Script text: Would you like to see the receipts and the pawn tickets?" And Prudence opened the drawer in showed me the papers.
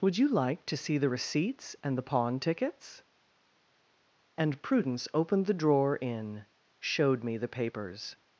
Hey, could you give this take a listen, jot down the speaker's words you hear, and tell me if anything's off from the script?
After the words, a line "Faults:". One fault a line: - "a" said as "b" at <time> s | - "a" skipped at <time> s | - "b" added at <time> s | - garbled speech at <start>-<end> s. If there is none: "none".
Would you like to see the receipts and the pawn tickets?" And Prudence opened the drawer in showed me the papers.
Faults:
none